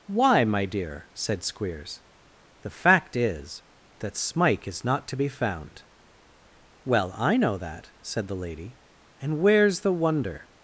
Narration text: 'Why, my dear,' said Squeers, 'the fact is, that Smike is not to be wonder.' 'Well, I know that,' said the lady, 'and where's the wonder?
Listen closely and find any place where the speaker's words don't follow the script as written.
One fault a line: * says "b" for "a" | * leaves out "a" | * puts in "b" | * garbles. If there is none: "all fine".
* says "found" for "wonder"